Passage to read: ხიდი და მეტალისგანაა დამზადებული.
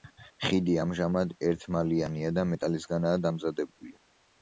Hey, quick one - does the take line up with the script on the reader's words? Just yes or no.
no